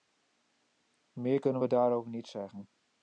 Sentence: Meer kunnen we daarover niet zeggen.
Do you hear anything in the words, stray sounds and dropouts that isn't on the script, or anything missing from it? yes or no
no